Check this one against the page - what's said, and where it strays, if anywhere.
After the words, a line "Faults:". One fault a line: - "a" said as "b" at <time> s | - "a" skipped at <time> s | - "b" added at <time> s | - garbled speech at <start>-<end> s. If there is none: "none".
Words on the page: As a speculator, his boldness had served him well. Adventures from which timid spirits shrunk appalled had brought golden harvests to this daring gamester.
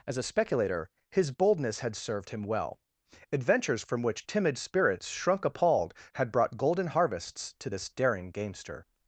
As a speculator, his boldness had served him well. Adventures from which timid spirits shrunk appalled had brought golden harvests to this daring gamester.
Faults:
none